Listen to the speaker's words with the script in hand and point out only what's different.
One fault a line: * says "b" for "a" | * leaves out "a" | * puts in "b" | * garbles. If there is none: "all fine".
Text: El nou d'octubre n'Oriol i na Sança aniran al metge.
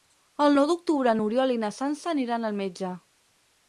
all fine